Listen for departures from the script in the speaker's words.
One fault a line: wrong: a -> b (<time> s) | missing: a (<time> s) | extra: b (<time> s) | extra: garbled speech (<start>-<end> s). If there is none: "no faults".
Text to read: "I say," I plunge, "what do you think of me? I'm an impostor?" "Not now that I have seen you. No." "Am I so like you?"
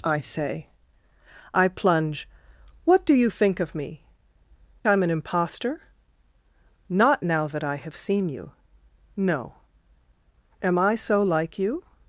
no faults